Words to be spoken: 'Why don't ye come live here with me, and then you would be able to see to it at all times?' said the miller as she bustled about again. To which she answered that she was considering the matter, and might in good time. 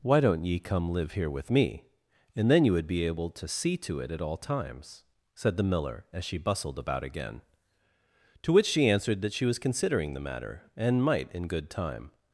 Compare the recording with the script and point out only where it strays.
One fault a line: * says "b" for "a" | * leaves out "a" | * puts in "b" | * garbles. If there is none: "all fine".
all fine